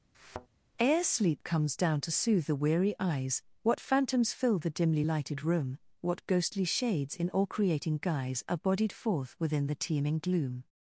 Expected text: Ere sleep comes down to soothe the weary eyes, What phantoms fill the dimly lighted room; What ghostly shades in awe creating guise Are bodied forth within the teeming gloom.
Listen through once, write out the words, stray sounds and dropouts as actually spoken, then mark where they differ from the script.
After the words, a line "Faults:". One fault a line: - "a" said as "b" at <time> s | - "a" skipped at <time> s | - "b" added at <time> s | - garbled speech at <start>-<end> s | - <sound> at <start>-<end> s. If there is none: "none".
Ere sleep comes down to soothe the weary eyes, What phantoms fill the dimly lighted room; What ghostly shades in all creating guise Are bodied forth within the teeming gloom.
Faults:
- thud at 0.1-0.5 s
- "awe" said as "all" at 7.3 s